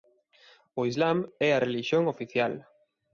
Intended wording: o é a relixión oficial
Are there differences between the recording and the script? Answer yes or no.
yes